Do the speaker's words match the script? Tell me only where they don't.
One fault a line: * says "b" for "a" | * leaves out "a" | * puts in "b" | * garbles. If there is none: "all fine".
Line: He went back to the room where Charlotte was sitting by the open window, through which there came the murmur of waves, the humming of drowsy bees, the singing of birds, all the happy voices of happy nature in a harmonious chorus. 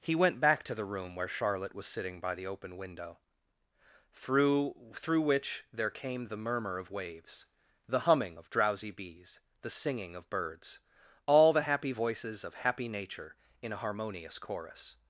* puts in "through"